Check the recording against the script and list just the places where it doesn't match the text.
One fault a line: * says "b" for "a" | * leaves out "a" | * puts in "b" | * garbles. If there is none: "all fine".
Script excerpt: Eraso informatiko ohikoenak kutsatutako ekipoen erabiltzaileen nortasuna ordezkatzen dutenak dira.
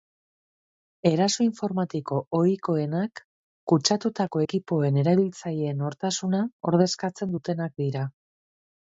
all fine